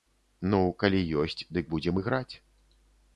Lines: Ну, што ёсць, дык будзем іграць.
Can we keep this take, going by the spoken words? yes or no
no